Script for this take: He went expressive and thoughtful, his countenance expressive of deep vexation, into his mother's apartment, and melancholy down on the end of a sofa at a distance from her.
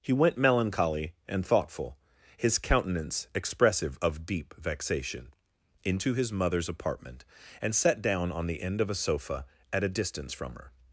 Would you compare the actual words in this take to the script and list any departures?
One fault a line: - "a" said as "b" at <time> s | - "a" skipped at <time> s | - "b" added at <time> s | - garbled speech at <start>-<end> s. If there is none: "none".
- "expressive" said as "melancholy" at 0.4 s
- "melancholy" said as "sat" at 7.8 s